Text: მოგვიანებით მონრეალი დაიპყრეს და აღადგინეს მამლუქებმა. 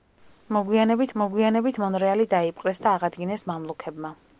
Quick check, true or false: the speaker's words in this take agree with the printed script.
false